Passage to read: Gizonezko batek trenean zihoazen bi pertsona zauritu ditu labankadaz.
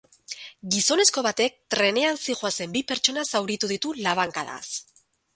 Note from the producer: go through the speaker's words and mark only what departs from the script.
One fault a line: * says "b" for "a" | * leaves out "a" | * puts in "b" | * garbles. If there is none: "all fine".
all fine